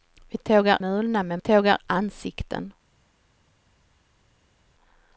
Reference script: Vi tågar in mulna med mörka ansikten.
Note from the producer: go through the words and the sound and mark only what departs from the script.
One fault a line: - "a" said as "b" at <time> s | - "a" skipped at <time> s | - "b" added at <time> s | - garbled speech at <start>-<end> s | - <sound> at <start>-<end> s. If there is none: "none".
- "in" skipped at 0.8 s
- "mörka" said as "tågar" at 1.4 s